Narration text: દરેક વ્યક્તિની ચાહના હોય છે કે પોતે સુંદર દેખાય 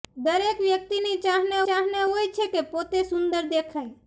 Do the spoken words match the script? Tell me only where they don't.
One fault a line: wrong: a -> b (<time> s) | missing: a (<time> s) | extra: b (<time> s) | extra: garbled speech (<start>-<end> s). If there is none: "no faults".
extra: ચાહના (1.6 s)